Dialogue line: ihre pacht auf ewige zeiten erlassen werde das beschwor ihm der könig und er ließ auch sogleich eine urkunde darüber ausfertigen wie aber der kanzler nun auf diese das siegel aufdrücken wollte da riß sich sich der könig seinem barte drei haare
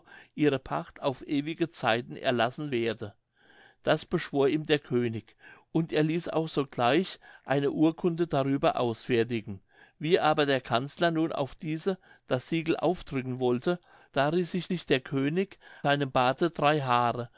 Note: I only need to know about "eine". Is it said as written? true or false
true